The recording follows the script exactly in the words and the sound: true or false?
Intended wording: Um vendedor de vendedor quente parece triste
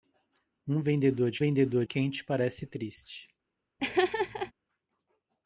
false